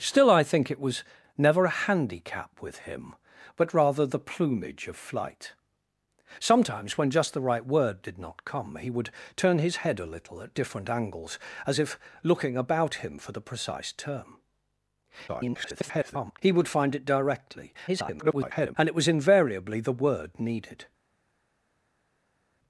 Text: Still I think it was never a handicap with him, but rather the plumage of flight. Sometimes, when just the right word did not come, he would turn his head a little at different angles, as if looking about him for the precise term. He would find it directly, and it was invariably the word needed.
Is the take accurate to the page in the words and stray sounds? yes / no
no